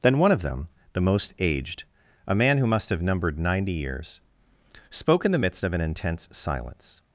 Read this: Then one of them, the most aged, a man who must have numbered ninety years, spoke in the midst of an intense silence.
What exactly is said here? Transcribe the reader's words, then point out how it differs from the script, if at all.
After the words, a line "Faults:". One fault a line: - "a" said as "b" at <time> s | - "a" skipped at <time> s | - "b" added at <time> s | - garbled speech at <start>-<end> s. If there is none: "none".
Then one of them, the most aged, a man who must have numbered ninety years, spoke in the midst of an intense silence.
Faults:
none